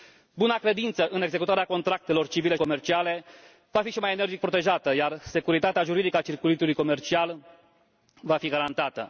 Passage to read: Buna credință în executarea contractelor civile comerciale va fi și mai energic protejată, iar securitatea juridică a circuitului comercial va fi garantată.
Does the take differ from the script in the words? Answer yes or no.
no